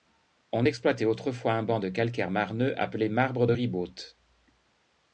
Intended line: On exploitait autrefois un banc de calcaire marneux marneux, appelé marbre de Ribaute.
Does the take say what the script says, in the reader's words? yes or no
no